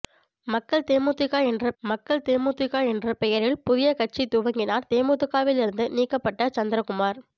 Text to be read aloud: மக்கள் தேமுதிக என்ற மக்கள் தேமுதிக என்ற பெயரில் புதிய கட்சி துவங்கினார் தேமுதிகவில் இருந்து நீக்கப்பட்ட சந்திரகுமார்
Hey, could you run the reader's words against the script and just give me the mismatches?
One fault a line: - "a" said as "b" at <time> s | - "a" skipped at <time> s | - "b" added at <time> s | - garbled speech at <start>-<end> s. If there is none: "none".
none